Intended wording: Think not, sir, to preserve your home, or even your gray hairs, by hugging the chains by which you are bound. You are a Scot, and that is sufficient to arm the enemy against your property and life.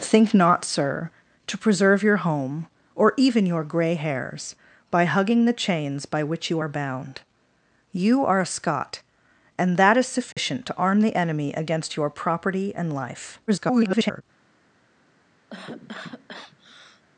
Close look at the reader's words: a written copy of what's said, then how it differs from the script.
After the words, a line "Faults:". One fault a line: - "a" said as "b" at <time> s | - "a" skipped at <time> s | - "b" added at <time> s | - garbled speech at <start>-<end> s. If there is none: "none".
Think not, sir, to preserve your home, or even your gray hairs, by hugging the chains by which you are bound. You are a Scot, and that is sufficient to arm the enemy against your property and life. [garbled]
Faults:
- garbled speech at 13.5-14.2 s